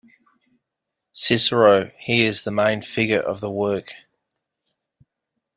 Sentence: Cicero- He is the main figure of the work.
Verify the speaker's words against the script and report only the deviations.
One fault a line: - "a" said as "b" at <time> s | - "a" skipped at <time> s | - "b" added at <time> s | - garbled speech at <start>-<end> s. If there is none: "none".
none